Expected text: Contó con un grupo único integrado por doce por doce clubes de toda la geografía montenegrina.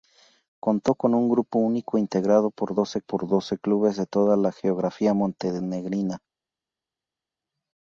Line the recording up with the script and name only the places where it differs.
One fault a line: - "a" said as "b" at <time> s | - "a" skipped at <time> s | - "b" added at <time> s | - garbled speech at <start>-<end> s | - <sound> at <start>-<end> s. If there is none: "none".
none